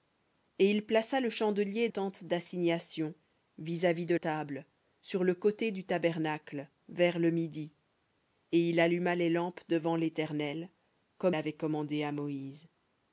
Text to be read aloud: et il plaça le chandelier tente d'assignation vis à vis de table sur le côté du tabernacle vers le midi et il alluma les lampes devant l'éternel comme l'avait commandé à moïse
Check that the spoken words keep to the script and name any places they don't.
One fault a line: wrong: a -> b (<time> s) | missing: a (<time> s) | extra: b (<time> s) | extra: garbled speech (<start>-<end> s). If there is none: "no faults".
no faults